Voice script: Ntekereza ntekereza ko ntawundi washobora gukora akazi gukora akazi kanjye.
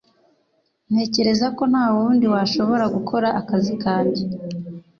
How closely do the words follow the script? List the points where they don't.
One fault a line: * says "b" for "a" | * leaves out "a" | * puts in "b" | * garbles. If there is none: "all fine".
* leaves out "ntekereza"
* leaves out "gukora akazi"